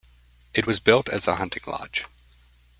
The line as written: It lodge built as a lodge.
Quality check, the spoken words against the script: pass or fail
fail